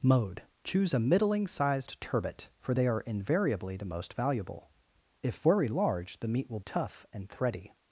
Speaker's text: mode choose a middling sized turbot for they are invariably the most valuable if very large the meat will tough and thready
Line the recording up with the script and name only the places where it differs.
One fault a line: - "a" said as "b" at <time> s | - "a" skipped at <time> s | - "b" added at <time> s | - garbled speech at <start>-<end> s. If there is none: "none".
none